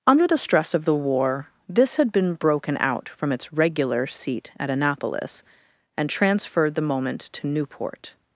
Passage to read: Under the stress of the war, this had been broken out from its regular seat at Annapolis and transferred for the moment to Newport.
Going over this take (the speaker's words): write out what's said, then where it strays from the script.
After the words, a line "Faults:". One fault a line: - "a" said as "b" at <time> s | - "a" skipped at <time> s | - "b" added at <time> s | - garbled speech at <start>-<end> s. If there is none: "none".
Under the stress of the war, this had been broken out from its regular seat at Annapolis and transferred the moment to Newport.
Faults:
- "for" skipped at 6.8 s